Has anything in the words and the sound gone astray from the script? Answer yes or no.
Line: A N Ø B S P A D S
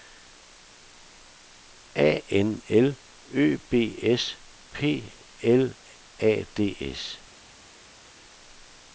yes